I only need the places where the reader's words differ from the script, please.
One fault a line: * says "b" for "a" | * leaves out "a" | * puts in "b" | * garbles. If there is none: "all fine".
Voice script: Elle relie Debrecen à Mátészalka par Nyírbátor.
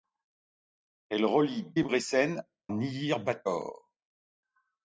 * leaves out "à Mátészalka par"